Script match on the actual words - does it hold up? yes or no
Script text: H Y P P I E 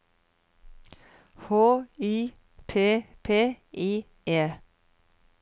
yes